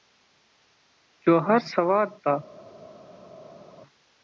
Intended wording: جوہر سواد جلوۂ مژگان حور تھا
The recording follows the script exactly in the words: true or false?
false